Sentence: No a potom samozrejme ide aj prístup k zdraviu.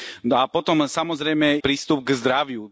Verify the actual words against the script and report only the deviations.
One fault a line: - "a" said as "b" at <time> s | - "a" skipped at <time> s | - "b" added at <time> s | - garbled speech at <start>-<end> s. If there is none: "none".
- "ide aj" skipped at 1.6 s